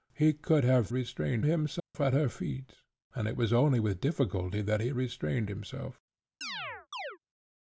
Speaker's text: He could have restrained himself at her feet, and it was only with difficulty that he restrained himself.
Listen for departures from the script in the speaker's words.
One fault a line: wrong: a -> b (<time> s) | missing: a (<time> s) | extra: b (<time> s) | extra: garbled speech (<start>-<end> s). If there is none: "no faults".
no faults